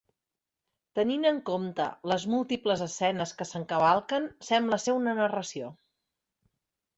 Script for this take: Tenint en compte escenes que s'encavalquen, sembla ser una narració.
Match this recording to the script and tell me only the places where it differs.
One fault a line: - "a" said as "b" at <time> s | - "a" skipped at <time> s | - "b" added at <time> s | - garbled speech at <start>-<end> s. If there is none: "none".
- "les múltiples" added at 2.1 s